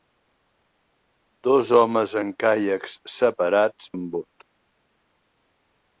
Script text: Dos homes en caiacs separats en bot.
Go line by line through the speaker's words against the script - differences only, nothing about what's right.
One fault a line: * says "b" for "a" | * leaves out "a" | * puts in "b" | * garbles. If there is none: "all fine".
all fine